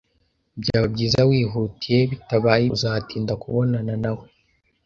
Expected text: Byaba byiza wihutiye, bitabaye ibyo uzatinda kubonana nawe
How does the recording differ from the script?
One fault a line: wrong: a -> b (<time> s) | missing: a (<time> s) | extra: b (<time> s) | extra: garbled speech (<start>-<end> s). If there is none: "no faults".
missing: ibyo (2.6 s)